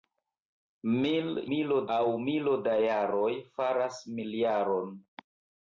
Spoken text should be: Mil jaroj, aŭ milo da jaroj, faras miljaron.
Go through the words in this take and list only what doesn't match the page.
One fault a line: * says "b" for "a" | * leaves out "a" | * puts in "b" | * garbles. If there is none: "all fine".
* says "milo" for "jaroj"